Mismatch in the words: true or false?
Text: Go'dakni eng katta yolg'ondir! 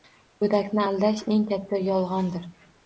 true